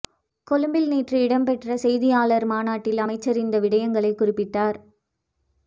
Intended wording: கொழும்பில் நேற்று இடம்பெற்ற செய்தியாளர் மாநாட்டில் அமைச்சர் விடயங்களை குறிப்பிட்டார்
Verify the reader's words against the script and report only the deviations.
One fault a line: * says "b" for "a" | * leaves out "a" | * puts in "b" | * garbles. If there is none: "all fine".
* puts in "இந்த"